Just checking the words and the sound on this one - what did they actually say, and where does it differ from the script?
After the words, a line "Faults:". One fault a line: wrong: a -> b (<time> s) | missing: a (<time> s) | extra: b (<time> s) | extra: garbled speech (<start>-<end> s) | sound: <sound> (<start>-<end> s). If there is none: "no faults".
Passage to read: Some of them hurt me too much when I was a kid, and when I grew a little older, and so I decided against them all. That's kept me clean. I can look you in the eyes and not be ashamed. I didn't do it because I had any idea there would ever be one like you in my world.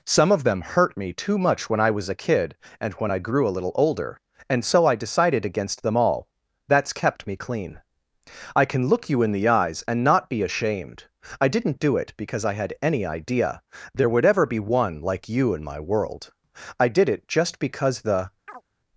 Some of them hurt me too much when I was a kid, and when I grew a little older, and so I decided against them all. That's kept me clean. I can look you in the eyes and not be ashamed. I didn't do it because I had any idea there would ever be one like you in my world. I did it just because the
Faults:
extra: I did it just because the (16.8 s)
sound: chirp (18.5-18.6 s)